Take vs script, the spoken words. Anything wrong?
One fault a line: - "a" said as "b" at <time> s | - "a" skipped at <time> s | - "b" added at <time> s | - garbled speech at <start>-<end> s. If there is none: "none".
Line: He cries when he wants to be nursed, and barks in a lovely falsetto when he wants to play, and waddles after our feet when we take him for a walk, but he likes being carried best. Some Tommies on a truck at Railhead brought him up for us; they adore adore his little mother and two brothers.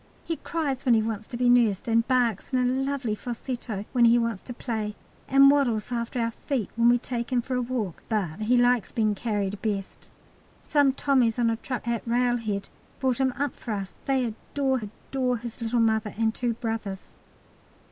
none